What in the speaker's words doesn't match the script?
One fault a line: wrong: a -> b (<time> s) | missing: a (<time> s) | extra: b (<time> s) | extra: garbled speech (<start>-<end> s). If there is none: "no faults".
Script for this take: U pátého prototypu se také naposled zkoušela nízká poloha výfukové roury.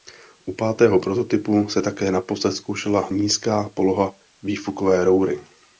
no faults